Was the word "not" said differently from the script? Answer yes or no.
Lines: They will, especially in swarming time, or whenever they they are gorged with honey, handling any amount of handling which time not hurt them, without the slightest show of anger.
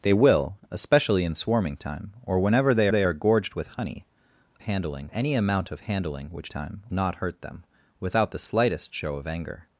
no